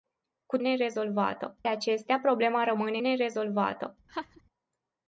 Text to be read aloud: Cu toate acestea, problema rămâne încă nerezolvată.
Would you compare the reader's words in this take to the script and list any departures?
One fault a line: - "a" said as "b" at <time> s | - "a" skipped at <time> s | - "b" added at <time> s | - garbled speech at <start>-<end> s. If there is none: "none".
- "toate" said as "nerezolvată" at 0.6 s
- "încă" skipped at 3.0 s